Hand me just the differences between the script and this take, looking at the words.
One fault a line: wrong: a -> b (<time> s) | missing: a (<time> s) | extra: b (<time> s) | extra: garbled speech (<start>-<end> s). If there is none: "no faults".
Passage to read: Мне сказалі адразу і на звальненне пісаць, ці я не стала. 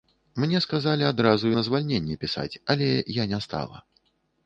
wrong: ці -> але (2.7 s)